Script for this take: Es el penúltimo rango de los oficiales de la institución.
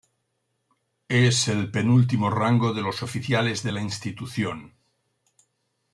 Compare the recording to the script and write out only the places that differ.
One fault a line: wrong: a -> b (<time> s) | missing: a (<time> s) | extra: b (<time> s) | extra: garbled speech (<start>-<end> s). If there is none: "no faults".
no faults